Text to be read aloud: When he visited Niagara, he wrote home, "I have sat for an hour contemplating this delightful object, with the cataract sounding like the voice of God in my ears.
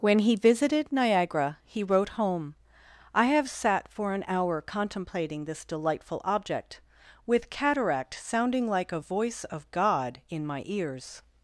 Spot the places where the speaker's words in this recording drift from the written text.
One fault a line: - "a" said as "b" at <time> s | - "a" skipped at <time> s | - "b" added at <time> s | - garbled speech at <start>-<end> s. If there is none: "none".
- "the" skipped at 7.5 s
- "the" said as "a" at 8.9 s